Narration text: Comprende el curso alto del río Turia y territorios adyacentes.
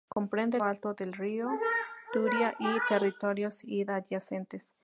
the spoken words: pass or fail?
fail